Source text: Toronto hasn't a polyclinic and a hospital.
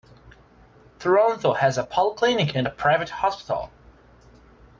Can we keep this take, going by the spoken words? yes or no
no